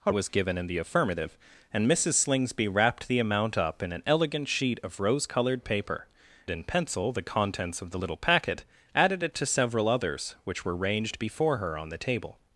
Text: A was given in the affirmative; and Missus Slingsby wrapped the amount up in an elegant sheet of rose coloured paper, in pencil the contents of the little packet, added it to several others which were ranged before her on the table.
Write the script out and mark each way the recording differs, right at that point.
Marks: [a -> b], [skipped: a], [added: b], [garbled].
A was given in the affirmative; and Missus Slingsby wrapped the amount up in an elegant sheet of rose coloured paper, in pencil the contents of the little packet, added it to several others which were ranged before her on the table.